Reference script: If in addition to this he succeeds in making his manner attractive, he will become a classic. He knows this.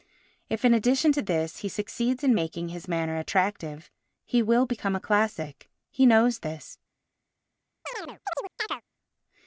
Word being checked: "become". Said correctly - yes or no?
yes